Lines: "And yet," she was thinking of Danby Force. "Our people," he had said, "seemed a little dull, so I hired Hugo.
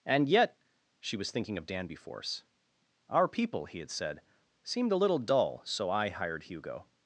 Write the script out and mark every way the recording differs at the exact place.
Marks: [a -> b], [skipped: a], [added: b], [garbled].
"And yet," she was thinking of Danby Force. "Our people," he had said, "seemed a little dull, so I hired Hugo.